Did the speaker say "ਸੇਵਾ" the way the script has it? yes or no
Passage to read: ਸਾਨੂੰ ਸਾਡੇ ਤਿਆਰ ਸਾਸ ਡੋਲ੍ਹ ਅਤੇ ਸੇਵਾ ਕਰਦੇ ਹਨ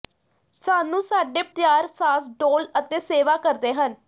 yes